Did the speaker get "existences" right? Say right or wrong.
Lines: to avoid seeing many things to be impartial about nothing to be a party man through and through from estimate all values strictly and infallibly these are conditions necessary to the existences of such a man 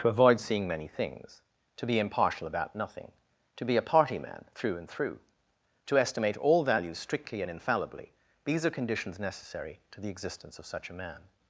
wrong